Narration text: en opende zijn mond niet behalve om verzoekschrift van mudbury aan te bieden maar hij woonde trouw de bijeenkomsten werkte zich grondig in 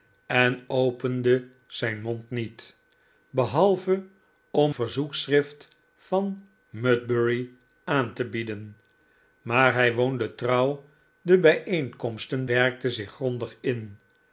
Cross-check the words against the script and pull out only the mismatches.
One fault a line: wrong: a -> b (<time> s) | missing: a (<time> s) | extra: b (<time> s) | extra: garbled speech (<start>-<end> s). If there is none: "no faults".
no faults